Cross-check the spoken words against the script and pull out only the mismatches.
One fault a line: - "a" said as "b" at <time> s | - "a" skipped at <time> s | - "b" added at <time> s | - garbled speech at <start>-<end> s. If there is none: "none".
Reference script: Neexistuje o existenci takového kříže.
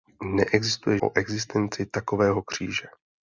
none